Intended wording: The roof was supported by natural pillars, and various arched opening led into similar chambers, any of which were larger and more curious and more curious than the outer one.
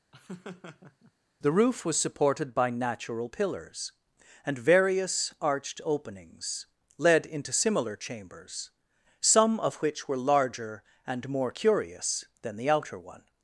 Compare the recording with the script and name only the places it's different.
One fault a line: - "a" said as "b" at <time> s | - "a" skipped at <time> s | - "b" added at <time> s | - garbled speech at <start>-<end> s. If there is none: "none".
- "opening" said as "openings" at 5.8 s
- "any" said as "some" at 9.2 s
- "and more curious" skipped at 12.2 s